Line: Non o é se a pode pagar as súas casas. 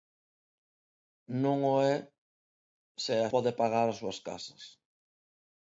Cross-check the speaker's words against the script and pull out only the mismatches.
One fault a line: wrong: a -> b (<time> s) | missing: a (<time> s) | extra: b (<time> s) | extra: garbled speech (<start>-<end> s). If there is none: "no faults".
no faults